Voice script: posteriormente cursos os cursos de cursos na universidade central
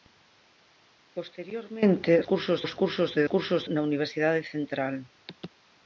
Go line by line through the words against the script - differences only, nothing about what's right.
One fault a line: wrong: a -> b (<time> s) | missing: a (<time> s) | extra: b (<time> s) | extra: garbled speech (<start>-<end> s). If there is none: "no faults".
no faults